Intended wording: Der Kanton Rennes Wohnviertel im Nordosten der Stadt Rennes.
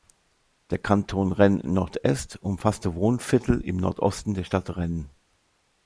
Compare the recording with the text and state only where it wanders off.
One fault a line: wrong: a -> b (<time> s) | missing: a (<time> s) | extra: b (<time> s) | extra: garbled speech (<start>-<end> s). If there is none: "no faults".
extra: Nord Est umfasste (1.6 s)